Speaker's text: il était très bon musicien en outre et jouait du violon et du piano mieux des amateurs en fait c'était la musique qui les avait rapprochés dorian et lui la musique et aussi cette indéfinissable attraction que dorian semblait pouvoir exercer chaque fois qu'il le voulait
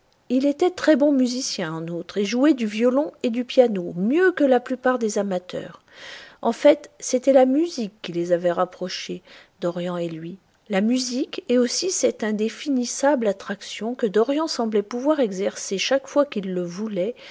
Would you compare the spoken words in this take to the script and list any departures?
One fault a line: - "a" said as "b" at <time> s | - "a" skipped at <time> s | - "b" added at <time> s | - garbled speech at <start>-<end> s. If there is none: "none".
- "que la plupart" added at 4.3 s